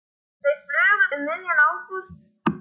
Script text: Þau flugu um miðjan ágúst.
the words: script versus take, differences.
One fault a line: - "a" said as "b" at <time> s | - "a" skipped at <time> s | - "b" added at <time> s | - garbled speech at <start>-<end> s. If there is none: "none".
none